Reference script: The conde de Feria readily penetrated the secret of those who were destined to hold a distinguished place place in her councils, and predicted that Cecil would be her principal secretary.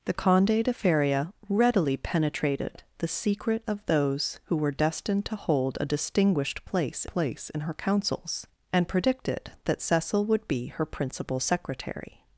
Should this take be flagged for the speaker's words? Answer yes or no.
no